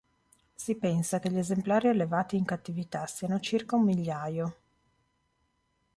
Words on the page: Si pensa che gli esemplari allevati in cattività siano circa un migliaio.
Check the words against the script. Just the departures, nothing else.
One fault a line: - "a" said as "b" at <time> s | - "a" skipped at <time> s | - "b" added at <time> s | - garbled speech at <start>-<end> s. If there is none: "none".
none